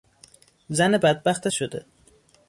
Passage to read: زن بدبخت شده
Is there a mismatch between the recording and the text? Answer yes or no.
no